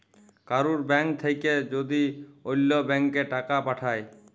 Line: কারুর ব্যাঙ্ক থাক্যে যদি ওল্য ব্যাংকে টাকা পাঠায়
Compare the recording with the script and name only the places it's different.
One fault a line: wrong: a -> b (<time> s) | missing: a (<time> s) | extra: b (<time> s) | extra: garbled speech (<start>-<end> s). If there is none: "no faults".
no faults